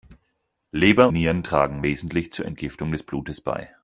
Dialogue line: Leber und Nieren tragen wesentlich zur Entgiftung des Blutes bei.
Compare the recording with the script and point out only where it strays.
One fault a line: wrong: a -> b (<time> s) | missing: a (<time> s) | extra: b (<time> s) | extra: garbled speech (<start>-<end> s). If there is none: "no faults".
missing: und (1.1 s)